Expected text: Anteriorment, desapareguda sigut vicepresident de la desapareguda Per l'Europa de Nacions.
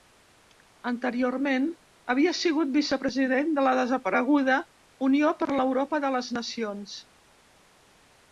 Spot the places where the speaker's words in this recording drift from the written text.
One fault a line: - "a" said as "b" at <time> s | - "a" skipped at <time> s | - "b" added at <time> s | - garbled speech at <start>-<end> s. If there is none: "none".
- "desapareguda" said as "havia" at 2.1 s
- "Unió" added at 5.1 s
- "les" added at 6.2 s